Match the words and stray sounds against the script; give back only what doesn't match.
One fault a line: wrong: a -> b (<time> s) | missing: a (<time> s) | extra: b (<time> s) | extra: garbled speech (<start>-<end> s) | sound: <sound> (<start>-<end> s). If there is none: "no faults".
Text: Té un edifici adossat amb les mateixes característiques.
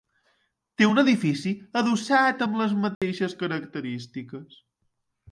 sound: dropout (2.9-3.0 s)